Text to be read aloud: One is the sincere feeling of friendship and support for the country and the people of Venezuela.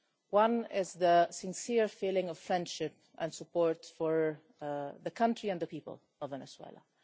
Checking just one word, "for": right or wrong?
right